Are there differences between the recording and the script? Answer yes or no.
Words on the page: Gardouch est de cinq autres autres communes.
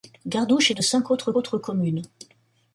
no